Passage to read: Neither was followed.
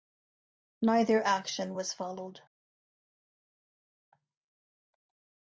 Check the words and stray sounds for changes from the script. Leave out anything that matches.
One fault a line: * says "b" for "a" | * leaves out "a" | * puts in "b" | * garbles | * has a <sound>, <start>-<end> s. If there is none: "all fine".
* puts in "action"